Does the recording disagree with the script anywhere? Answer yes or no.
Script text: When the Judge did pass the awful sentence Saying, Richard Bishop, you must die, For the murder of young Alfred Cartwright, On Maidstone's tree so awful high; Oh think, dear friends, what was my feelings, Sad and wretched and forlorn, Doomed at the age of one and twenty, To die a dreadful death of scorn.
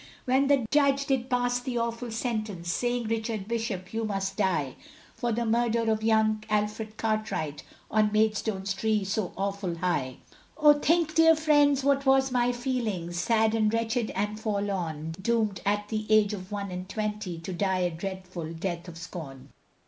no